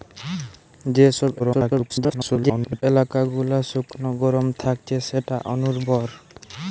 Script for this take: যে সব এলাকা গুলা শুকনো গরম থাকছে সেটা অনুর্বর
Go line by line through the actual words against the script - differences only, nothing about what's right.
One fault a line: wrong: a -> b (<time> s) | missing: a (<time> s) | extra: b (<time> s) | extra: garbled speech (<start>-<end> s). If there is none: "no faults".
extra: garbled speech (1.4-2.8 s)